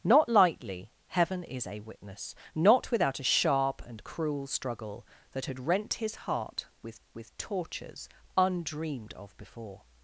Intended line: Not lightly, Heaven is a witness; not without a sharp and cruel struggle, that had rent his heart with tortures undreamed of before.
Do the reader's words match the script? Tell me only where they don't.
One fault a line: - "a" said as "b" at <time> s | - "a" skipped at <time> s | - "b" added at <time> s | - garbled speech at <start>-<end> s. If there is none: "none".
- "with" added at 7.1 s